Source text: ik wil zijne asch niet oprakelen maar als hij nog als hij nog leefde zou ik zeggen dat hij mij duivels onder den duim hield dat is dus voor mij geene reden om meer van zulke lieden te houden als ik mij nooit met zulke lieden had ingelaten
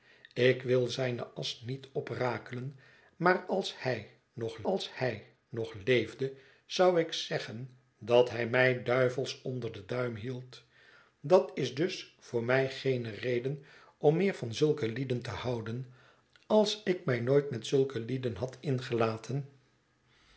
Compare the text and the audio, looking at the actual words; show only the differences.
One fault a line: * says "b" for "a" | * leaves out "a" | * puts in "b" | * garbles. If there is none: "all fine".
all fine